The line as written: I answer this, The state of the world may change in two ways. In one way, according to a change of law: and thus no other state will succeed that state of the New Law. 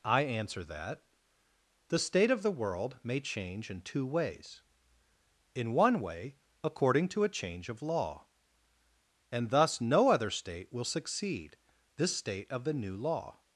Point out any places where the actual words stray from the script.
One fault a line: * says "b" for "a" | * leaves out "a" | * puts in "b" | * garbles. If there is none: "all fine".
* says "that" for "this"
* says "this" for "that"